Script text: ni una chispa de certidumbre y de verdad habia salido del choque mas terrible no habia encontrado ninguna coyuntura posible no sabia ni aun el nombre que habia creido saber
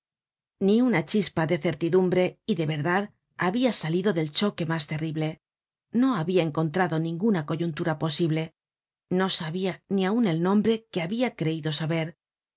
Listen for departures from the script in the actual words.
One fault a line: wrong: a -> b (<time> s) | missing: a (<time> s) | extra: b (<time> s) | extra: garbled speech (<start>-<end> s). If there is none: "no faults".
no faults